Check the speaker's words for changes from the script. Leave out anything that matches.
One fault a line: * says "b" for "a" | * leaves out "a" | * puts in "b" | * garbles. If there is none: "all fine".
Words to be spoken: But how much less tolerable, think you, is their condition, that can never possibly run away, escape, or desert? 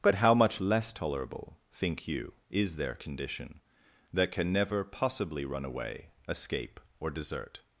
all fine